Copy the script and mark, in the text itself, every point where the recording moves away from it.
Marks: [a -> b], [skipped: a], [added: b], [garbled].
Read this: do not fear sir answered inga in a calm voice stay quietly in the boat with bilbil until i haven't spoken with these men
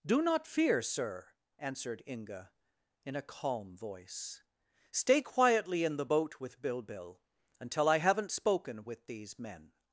do not fear sir answered inga in a calm voice stay quietly in the boat with bilbil until i haven't spoken with these men